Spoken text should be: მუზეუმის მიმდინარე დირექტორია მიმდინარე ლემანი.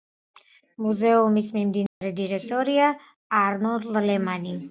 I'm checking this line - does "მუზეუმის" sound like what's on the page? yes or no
yes